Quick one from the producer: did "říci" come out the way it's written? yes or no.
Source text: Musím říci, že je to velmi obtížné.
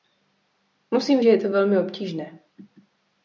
no